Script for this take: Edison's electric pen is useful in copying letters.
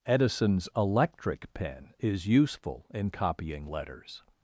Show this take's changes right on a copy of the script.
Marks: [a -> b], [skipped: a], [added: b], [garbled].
Edison's electric pen is useful in copying letters.